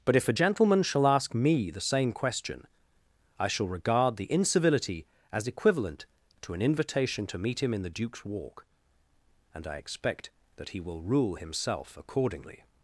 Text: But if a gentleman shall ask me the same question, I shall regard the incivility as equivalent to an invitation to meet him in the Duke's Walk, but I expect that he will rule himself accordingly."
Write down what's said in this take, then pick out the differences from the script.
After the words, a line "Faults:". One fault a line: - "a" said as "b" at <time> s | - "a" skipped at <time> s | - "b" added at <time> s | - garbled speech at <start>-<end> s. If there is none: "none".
But if a gentleman shall ask me the same question, I shall regard the incivility as equivalent to an invitation to meet him in the Duke's Walk, and I expect that he will rule himself accordingly."
Faults:
- "but" said as "and" at 9.5 s